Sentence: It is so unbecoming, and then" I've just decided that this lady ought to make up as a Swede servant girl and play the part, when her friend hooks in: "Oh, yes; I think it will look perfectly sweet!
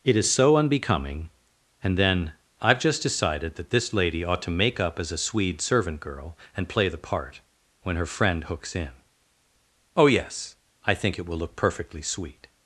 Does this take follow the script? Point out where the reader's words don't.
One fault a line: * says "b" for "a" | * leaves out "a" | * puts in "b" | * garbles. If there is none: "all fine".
all fine